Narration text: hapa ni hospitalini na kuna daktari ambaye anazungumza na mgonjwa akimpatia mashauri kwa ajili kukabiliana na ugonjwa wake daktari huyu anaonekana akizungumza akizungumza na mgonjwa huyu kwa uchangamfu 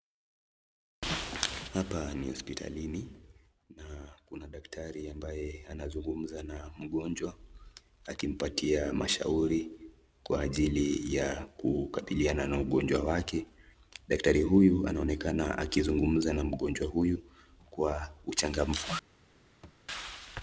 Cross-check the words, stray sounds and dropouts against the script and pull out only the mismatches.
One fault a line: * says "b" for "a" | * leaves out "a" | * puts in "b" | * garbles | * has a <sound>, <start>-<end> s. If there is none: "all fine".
* puts in "ya"
* leaves out "akizungumza"
* has a thud, 19.6-19.8 s